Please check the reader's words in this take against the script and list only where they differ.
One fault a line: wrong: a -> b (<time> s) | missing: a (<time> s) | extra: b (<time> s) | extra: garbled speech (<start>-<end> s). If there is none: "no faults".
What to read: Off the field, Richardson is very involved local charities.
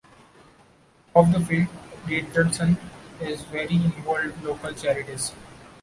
no faults